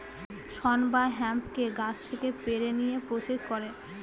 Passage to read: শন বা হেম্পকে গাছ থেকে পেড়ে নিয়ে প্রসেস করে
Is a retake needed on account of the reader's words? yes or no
no